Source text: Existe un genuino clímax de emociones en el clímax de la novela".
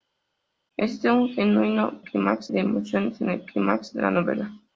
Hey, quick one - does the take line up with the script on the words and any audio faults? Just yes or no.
yes